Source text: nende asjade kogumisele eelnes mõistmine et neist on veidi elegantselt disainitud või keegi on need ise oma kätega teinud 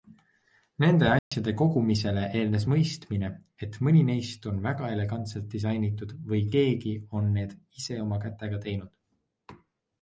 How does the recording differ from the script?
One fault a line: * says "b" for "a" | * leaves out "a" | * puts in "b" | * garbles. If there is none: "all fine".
* puts in "mõni"
* says "väga" for "veidi"